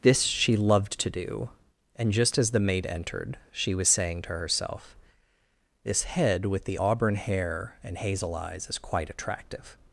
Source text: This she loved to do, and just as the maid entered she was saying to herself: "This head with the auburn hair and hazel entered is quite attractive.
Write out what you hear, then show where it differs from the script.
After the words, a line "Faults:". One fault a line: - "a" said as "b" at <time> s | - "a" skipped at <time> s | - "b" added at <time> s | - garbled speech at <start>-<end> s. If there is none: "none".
This she loved to do, and just as the maid entered she was saying to herself: "This head with the auburn hair and hazel eyes is quite attractive.
Faults:
- "entered" said as "eyes" at 8.3 s